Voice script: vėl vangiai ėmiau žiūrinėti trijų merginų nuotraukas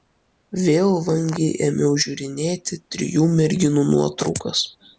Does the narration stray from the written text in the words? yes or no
no